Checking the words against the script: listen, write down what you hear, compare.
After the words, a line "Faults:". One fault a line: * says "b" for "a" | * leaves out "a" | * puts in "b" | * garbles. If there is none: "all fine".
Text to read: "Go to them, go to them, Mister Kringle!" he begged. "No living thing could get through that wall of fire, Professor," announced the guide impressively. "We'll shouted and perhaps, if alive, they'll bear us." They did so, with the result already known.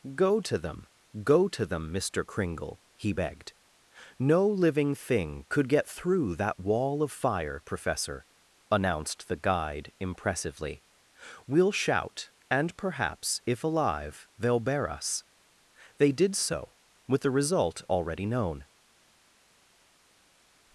"Go to them, go to them, Mister Kringle!" he begged. "No living thing could get through that wall of fire, Professor," announced the guide impressively. "We'll shout and perhaps, if alive, they'll bear us." They did so, with the result already known.
Faults:
* says "shout" for "shouted"